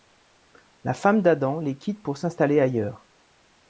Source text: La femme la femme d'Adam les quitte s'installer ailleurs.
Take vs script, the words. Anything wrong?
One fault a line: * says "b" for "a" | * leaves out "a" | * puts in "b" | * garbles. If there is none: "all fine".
* leaves out "la femme"
* puts in "pour"